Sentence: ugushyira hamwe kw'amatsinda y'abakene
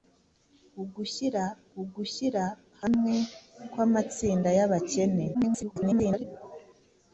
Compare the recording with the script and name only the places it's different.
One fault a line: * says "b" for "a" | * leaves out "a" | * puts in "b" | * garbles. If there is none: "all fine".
* puts in "ugushyira"
* garbles